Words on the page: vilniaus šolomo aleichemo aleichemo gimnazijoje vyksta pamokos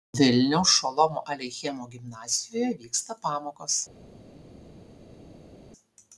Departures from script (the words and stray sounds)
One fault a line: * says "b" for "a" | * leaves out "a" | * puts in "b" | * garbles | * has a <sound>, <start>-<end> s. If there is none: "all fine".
* leaves out "aleichemo"